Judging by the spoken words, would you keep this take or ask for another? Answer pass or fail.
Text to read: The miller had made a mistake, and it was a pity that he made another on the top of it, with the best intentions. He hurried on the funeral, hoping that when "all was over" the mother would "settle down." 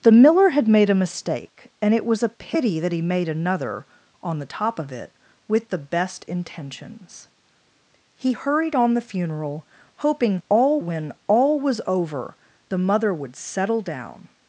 fail